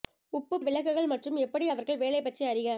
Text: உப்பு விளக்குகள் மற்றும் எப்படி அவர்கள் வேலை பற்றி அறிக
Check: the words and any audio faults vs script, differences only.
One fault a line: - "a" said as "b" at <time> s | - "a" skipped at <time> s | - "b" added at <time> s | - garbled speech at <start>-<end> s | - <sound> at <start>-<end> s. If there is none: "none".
none